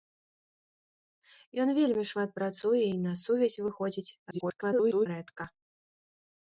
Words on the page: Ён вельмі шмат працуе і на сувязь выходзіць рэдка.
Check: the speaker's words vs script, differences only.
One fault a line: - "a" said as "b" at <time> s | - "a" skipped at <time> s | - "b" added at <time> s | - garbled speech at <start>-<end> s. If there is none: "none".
- garbled speech at 4.3-5.1 s